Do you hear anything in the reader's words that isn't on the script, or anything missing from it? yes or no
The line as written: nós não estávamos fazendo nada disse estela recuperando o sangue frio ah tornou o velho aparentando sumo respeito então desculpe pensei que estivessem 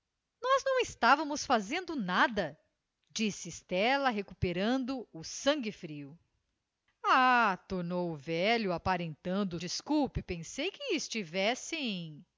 yes